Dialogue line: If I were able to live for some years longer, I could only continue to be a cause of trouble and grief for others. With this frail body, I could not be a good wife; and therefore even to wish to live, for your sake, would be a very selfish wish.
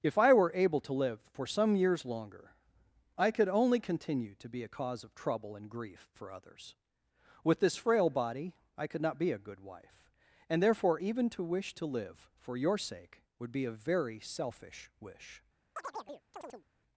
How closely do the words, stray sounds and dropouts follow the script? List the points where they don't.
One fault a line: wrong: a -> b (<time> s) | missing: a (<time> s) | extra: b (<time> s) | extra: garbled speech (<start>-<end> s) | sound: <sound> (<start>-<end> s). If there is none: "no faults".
sound: chirp (15.8-16.6 s)